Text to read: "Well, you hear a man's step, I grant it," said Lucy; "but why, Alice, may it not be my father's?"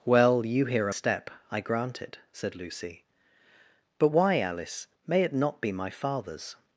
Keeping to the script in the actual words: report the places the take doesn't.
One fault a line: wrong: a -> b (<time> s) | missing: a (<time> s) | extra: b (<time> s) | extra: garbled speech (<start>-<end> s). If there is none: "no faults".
missing: man's (0.9 s)